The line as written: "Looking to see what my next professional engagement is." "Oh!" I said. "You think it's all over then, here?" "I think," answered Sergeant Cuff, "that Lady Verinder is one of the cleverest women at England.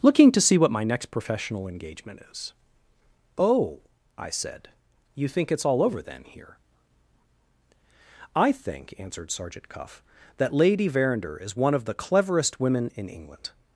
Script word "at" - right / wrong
wrong